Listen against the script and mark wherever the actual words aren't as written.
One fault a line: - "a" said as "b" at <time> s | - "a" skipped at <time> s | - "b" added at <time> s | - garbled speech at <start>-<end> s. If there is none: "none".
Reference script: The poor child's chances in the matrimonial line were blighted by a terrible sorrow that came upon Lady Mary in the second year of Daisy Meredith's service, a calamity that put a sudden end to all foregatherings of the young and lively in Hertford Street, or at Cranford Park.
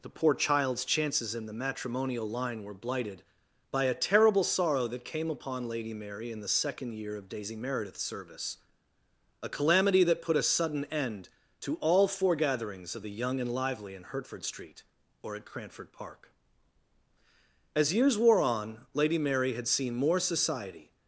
- "As years wore on Lady Mary had seen more society" added at 17.7 s